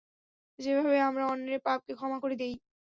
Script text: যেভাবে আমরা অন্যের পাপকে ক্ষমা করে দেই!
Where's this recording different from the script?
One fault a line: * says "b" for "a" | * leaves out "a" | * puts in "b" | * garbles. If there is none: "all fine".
all fine